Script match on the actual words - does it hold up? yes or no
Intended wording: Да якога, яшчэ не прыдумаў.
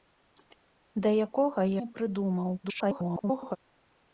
no